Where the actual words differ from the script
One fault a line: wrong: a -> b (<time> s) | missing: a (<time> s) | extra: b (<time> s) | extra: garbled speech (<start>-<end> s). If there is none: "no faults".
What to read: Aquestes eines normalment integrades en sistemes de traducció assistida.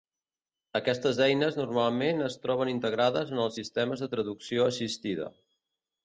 extra: es troben (2.3 s)
extra: els (3.4 s)